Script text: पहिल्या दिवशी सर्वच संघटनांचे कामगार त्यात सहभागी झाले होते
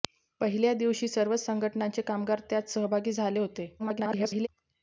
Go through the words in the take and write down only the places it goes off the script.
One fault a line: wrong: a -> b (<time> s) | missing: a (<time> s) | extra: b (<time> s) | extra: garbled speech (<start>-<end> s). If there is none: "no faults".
extra: garbled speech (3.8-4.5 s)